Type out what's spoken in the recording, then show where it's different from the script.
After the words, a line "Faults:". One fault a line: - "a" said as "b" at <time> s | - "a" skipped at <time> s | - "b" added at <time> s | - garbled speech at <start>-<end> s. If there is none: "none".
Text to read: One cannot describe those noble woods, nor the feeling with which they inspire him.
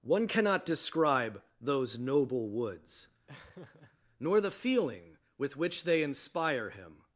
One cannot describe those noble woods, nor the feeling with which they inspire him.
Faults:
none